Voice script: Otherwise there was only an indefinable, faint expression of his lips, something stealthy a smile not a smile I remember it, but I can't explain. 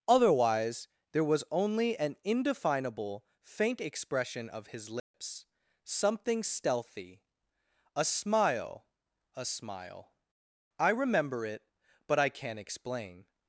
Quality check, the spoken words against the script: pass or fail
fail